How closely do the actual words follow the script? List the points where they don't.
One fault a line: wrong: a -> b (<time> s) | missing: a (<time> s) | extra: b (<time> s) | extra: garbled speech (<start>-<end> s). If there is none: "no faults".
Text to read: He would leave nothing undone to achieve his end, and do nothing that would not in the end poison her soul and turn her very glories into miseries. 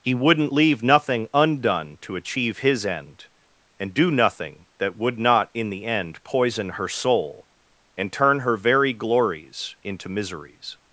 wrong: would -> wouldn't (0.1 s)